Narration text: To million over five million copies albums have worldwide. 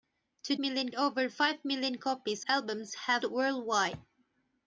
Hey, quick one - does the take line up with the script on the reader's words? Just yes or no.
yes